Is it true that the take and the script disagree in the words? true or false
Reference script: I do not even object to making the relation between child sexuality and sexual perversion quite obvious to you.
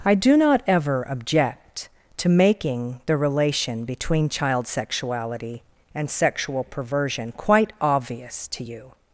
true